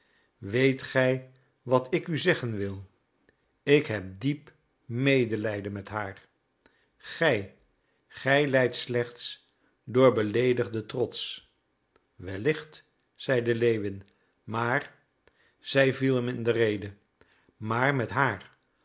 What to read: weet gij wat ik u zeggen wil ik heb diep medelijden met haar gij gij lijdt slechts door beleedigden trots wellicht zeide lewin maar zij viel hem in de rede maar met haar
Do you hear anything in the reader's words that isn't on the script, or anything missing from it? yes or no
no